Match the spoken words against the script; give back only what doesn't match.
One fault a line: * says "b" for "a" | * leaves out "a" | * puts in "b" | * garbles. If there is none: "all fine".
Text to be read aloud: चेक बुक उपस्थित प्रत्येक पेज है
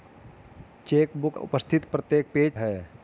all fine